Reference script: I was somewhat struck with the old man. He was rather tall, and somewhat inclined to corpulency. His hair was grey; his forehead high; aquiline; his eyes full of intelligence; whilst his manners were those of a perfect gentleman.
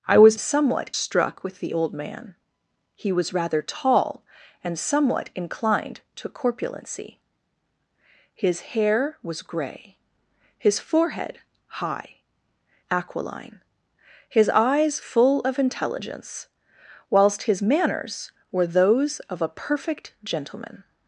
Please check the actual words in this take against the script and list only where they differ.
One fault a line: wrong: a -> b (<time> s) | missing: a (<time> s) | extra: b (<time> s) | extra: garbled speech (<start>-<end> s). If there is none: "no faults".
no faults